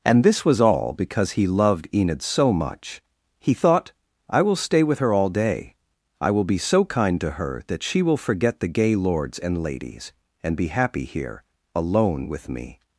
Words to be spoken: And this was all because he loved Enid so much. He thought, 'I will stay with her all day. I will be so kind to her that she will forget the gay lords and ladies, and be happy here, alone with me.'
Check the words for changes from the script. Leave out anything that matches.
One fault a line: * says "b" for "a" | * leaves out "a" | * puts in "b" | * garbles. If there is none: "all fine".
all fine